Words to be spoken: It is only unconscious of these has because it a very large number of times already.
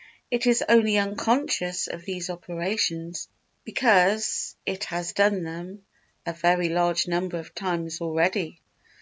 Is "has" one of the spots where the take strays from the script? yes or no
yes